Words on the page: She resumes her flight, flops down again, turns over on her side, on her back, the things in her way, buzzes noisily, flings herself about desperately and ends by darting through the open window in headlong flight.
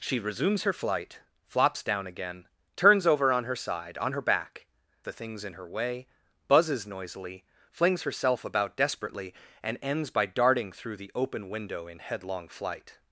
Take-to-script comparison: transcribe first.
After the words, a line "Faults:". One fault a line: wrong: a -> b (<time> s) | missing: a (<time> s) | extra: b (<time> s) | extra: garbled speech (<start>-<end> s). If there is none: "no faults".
She resumes her flight, flops down again, turns over on her side, on her back, the things in her way, buzzes noisily, flings herself about desperately and ends by darting through the open window in headlong flight.
Faults:
no faults